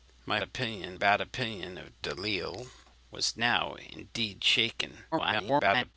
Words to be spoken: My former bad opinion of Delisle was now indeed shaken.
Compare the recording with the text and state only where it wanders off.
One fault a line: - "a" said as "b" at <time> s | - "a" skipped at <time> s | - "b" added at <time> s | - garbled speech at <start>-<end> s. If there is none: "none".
- "former" said as "opinion" at 0.4 s
- garbled speech at 5.1-5.9 s